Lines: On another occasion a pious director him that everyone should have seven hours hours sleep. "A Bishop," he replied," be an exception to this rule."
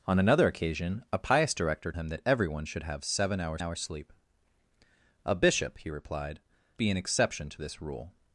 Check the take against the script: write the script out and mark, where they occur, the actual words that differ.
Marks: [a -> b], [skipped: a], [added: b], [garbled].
On another occasion a pious director him that everyone should have seven hours hours sleep. "A Bishop," he replied," be an exception to this rule."